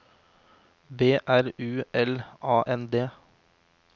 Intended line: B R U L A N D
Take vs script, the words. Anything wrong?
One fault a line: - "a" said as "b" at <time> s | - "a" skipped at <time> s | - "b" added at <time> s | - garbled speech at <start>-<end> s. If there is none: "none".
none